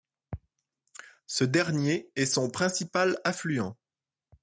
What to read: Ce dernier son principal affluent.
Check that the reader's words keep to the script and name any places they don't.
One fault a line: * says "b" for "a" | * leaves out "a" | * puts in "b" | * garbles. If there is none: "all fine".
* puts in "est"